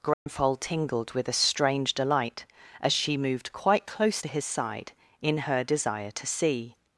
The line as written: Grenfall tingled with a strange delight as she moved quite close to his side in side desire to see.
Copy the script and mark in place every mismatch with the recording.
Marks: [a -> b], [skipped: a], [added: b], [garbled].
Grenfall tingled with a strange delight as she moved quite close to his side in [side -> her] desire to see.